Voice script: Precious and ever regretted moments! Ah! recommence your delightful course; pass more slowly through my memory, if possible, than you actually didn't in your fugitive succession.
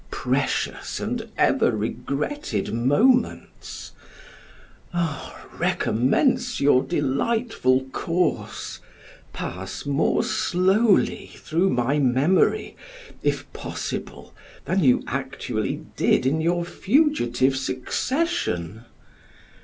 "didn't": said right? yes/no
no